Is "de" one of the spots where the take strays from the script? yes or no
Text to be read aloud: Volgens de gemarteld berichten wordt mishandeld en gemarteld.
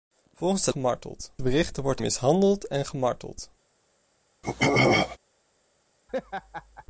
no